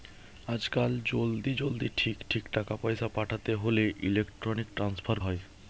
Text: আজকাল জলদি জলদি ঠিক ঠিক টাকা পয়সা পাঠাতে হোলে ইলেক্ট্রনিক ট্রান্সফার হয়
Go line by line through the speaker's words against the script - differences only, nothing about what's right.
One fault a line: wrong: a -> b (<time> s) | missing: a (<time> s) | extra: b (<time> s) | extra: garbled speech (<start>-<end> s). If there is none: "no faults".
no faults